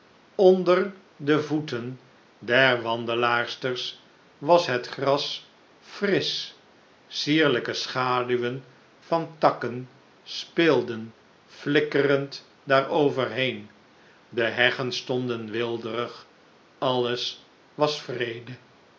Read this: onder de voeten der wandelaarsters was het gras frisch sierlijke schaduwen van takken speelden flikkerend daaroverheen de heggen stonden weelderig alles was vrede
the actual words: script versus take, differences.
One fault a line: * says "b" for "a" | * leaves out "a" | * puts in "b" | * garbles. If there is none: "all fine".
all fine